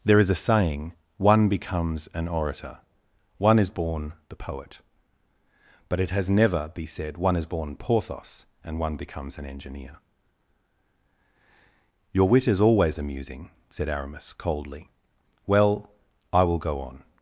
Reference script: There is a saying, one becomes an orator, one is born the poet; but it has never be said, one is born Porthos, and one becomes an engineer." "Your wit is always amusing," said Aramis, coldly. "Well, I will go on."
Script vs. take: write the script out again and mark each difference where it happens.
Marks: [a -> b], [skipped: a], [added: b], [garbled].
There is a saying, one becomes an orator, one is born the poet; but it has never be said, one is born Porthos, and one becomes an engineer." "Your wit is always amusing," said Aramis, coldly. "Well, I will go on."